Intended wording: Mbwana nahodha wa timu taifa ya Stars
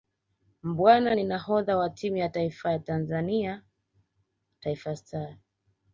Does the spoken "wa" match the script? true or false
true